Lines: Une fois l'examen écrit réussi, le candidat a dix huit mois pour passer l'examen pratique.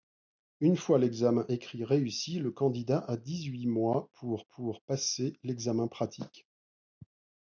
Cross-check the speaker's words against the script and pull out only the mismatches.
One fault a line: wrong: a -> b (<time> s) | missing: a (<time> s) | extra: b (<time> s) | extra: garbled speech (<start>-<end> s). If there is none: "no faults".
extra: pour (4.5 s)